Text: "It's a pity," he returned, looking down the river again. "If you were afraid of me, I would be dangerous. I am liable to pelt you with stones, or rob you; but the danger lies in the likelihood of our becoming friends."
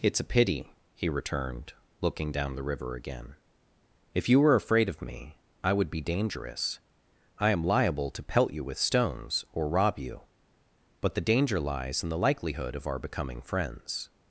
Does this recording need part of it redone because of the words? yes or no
no